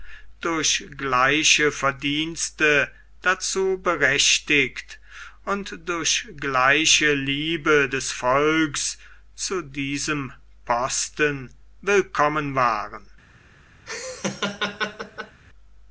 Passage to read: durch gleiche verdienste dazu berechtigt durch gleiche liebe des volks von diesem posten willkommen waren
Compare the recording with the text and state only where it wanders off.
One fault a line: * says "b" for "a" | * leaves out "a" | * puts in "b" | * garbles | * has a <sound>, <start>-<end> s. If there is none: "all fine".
* puts in "und"
* says "zu" for "von"
* has a laugh, 13.9-15.4 s